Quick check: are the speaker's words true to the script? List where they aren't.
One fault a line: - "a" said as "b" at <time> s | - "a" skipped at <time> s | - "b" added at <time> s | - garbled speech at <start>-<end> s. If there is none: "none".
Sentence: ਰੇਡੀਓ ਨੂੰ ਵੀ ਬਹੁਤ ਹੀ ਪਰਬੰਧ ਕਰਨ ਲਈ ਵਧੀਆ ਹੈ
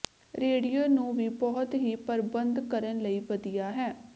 none